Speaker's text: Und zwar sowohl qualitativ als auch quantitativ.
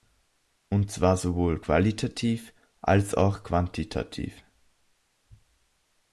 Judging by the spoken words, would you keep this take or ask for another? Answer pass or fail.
pass